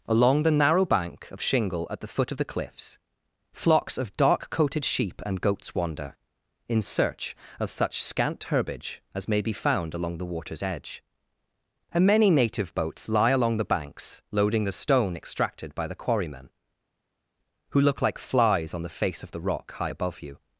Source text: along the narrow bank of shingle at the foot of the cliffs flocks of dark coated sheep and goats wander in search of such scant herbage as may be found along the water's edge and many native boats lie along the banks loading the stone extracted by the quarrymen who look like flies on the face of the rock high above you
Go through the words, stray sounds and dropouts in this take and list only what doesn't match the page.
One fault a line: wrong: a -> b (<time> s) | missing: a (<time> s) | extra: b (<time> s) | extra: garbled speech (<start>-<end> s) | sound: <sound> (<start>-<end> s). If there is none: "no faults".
no faults